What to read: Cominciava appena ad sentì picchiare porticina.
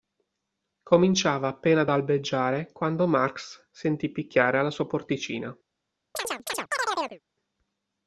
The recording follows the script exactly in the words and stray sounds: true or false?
false